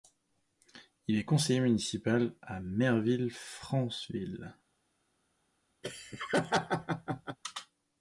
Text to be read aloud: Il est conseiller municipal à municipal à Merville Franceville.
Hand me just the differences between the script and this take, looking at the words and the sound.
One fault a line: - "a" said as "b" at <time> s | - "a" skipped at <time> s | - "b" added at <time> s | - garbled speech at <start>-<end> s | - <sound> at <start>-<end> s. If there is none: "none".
- "municipal à" skipped at 2.6 s
- laugh at 5.8-7.4 s